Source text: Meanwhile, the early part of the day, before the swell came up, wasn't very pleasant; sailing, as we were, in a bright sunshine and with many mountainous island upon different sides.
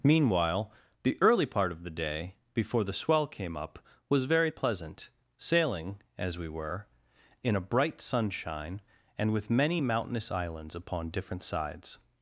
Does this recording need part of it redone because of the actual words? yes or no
yes